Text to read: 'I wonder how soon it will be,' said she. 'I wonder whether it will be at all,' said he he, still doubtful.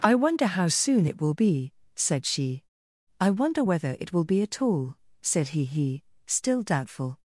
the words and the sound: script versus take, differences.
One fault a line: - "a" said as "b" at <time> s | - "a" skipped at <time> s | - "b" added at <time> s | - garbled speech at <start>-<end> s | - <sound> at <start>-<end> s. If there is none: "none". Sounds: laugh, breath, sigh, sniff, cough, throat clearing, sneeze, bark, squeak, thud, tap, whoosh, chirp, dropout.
none